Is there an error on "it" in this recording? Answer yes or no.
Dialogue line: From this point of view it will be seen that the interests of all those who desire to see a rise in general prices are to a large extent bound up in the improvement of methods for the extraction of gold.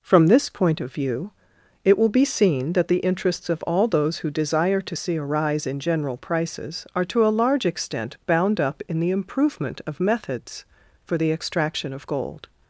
no